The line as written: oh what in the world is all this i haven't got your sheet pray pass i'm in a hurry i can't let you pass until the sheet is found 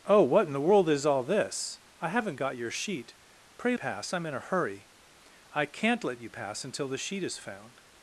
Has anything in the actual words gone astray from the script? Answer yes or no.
no